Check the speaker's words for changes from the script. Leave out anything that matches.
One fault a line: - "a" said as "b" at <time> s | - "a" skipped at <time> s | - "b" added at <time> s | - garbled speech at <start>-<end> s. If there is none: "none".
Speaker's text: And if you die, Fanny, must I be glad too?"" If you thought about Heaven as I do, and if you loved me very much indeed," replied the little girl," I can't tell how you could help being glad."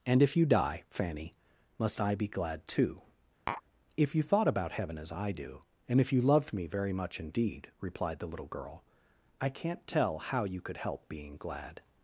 none